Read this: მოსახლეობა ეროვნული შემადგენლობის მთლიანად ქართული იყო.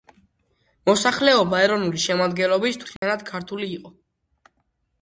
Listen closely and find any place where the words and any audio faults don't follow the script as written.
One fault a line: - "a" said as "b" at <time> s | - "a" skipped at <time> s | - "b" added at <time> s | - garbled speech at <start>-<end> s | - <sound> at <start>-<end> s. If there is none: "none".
- dropout at 3.0-3.0 s